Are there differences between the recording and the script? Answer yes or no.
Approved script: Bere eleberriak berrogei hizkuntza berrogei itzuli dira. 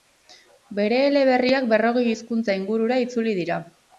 yes